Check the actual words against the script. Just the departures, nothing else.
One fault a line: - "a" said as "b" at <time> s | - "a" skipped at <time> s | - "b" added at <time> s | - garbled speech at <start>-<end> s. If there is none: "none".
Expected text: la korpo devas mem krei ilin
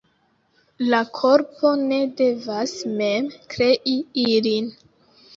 - "ne" added at 1.8 s